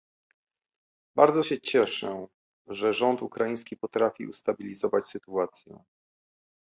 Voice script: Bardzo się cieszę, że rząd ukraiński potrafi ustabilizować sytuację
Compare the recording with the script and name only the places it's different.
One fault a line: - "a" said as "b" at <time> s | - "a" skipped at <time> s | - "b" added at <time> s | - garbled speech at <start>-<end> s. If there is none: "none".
none